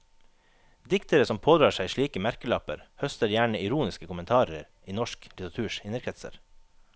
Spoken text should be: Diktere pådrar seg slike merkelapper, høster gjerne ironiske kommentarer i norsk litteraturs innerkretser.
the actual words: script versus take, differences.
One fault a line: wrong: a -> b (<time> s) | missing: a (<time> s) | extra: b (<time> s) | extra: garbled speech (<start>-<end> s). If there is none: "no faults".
extra: som (1.3 s)